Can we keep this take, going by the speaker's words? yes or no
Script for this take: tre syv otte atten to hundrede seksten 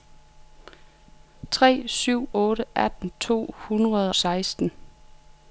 yes